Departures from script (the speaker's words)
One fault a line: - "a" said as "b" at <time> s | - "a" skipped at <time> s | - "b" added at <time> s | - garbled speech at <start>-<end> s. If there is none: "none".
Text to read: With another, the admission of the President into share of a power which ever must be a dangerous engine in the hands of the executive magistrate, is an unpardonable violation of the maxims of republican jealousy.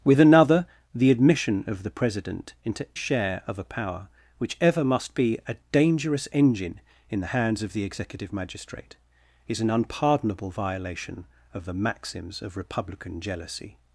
none